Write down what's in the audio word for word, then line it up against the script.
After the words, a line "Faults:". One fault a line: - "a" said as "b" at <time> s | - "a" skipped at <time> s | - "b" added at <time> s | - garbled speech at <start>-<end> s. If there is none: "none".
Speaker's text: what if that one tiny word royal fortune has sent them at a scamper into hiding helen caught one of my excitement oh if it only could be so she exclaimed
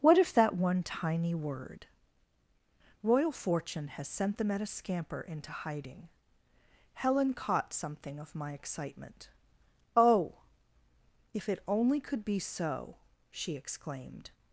what if that one tiny word royal fortune has sent them at a scamper into hiding helen caught something of my excitement oh if it only could be so she exclaimed
Faults:
- "one" said as "something" at 7.7 s